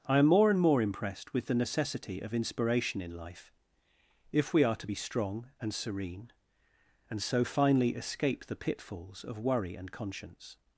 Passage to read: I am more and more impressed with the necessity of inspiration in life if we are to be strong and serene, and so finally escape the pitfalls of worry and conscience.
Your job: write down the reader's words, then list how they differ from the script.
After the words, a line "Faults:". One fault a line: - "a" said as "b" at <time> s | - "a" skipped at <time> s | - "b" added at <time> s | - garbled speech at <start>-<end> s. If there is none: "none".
I am more and more impressed with the necessity of inspiration in life if we are to be strong and serene, and so finally escape the pitfalls of worry and conscience.
Faults:
none